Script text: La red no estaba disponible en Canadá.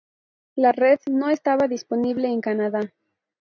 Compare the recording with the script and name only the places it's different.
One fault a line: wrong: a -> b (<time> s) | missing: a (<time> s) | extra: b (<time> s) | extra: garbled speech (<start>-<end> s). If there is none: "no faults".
no faults